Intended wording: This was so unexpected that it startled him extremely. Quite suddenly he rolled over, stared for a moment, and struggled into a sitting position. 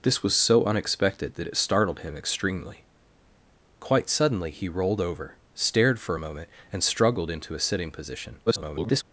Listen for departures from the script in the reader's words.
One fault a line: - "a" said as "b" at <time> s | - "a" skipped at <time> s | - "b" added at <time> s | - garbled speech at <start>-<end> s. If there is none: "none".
- garbled speech at 8.5-9.0 s